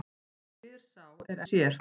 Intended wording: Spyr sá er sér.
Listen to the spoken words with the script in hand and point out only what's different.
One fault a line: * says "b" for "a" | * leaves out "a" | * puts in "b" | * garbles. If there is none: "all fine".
all fine